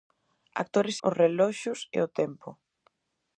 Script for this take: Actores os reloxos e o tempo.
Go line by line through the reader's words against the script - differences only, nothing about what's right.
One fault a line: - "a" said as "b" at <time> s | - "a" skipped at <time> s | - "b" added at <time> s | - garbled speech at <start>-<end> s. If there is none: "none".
none